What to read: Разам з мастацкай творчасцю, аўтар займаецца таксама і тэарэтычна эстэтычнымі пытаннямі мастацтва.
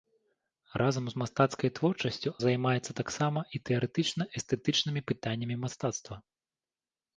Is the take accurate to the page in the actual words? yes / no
no